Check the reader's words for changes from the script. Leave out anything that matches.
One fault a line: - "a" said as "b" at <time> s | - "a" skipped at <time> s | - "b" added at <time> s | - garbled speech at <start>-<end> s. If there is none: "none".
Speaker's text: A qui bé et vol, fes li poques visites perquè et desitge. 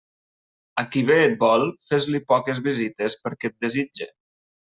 none